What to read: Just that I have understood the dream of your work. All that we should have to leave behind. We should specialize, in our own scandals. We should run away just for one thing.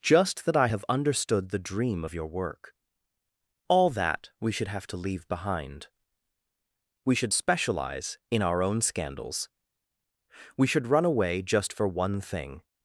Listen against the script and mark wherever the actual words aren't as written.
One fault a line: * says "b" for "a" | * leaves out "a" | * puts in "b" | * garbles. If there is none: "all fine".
all fine